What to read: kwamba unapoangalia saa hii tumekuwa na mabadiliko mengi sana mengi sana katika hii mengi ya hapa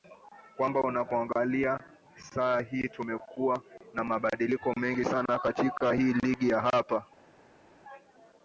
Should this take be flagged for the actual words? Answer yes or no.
yes